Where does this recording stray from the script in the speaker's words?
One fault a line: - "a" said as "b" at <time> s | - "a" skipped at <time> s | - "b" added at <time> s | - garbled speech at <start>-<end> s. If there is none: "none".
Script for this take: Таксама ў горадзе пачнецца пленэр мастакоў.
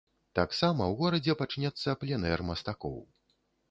none